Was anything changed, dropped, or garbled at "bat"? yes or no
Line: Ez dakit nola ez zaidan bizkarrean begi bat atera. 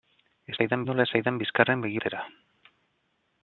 yes